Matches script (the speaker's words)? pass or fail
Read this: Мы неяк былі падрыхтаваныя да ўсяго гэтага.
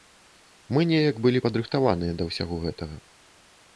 pass